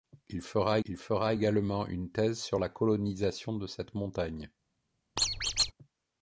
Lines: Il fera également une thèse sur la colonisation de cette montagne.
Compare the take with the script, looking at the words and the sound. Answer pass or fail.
fail